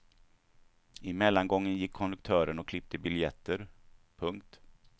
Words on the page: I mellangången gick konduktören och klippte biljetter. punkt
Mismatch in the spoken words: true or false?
false